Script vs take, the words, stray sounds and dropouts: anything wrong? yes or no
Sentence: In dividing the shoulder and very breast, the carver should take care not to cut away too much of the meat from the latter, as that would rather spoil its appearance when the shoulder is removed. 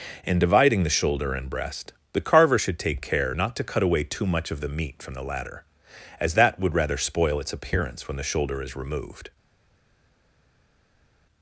yes